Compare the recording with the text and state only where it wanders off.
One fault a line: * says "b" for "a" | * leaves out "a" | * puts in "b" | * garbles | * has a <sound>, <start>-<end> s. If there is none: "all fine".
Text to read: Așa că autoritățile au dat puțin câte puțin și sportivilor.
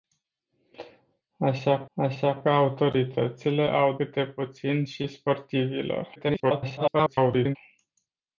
* puts in "așa"
* leaves out "dat puțin"
* garbles